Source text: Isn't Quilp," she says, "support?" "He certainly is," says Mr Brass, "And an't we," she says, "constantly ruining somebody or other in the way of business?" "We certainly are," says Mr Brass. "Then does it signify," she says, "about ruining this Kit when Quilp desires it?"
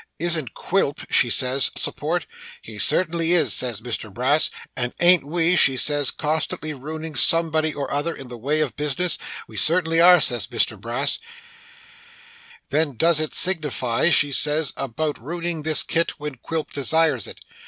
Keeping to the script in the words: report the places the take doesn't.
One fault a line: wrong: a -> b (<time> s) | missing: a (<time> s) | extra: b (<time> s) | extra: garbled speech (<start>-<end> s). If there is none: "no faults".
no faults